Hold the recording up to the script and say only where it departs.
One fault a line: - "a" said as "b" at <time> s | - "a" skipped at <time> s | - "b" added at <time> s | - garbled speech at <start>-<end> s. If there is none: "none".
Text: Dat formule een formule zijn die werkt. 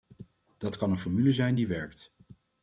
- "formule" said as "kan" at 0.8 s